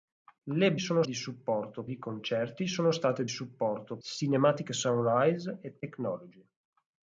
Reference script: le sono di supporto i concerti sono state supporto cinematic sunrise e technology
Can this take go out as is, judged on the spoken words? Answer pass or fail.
pass